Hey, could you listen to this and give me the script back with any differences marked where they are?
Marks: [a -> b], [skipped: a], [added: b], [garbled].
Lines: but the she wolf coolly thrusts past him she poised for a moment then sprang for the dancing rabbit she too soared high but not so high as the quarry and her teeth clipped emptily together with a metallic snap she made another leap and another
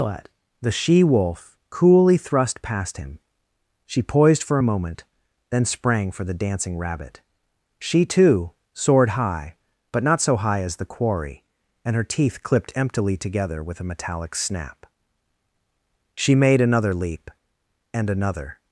but the she wolf coolly [thrusts -> thrust] past him she poised for a moment then sprang for the dancing rabbit she too soared high but not so high as the quarry and her teeth clipped emptily together with a metallic snap she made another leap and another